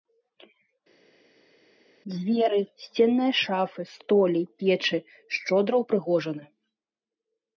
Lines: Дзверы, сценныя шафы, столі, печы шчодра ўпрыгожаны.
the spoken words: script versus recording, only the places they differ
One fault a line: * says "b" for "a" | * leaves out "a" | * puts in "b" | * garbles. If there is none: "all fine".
all fine